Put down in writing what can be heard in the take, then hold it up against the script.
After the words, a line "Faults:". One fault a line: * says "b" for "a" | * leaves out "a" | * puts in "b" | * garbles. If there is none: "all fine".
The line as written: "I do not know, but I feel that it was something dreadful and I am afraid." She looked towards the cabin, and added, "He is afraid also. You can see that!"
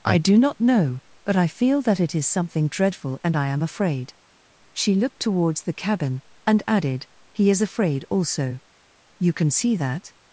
"I do not know, but I feel that it is something dreadful and I am afraid." She looked towards the cabin, and added, "He is afraid also. You can see that!"
Faults:
* says "is" for "was"